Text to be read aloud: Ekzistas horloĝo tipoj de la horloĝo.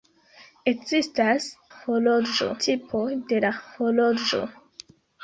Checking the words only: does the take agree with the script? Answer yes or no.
yes